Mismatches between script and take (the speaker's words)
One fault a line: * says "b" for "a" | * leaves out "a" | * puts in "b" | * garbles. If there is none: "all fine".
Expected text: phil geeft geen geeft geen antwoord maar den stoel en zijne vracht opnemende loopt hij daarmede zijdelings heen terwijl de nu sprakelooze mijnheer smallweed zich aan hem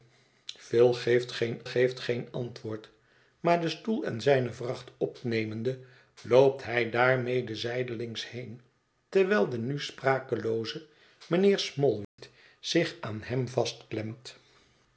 all fine